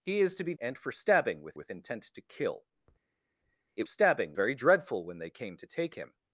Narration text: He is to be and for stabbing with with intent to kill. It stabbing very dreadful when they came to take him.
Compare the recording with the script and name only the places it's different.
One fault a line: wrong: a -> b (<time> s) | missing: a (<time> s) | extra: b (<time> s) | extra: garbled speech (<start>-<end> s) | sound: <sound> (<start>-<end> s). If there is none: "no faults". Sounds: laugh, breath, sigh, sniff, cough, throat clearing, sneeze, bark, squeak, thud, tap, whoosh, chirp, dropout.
no faults